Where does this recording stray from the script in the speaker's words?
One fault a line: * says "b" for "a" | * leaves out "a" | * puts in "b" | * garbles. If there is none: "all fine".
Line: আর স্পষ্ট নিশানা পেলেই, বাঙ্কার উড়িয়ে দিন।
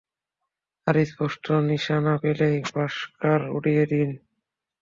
all fine